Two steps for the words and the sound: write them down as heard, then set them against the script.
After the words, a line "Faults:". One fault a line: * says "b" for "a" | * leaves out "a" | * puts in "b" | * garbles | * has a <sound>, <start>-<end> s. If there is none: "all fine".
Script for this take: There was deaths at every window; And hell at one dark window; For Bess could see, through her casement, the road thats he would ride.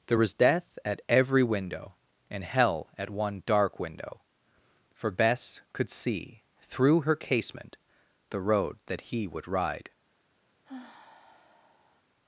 There was death at every window; And hell at one dark window; For Bess could see, through her casement, the road that he would ride.
Faults:
* says "death" for "deaths"
* says "that" for "thats"
* has a sigh, 10.6-12.0 s